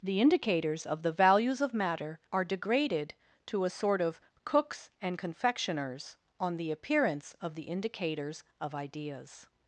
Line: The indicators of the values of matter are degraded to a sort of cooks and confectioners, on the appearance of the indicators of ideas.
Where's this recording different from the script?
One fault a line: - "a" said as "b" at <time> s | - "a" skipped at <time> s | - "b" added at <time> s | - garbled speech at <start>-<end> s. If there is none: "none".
none